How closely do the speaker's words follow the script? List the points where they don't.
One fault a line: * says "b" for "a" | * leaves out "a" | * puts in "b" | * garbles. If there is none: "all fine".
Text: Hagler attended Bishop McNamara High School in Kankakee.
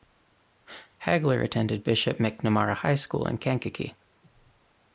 all fine